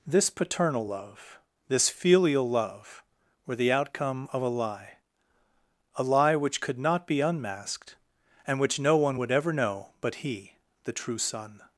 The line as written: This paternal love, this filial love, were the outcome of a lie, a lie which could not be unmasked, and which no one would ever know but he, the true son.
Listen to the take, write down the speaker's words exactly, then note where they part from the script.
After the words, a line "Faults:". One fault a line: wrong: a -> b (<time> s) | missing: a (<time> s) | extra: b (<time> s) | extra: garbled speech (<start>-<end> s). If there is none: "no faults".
This paternal love, this filial love, were the outcome of a lie, a lie which could not be unmasked, and which no one would ever know but he, the true son.
Faults:
no faults